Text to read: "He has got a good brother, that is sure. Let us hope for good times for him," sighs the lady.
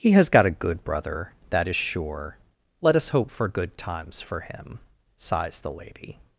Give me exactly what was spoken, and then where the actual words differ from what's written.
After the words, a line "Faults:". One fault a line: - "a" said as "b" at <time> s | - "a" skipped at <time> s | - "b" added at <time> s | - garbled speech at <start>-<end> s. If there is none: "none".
"He has got a good brother, that is sure. Let us hope for good times for him," sighs the lady.
Faults:
none